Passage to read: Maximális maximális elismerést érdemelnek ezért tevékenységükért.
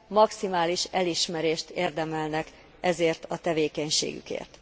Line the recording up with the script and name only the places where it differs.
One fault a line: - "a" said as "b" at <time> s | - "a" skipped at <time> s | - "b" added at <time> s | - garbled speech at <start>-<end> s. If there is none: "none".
- "maximális" skipped at 0.9 s
- "a" added at 3.3 s